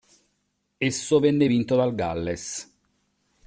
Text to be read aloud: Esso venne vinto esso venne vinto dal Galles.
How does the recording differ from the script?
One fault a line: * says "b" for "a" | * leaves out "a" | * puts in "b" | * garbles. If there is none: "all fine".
* leaves out "esso venne vinto"